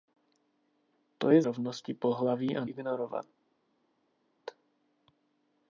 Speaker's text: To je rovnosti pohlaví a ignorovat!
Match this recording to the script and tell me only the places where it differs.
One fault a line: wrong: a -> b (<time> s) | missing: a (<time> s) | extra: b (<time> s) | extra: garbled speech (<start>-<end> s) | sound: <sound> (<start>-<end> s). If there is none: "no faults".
no faults